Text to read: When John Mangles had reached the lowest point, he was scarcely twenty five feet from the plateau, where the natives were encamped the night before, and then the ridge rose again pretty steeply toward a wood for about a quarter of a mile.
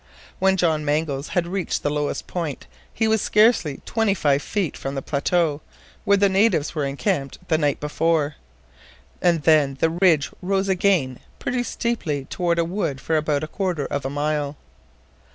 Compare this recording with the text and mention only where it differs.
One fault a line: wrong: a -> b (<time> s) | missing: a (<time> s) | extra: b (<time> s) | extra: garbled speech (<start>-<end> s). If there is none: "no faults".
no faults